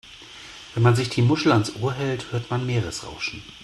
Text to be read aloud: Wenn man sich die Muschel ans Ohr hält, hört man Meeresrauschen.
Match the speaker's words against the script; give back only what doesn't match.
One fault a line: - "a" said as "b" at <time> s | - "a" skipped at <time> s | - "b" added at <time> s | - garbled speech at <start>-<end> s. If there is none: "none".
none